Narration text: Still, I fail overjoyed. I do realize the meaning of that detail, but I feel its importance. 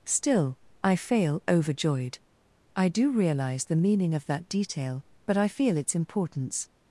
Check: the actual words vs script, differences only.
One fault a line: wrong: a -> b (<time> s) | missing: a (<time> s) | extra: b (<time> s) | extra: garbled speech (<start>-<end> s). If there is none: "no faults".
no faults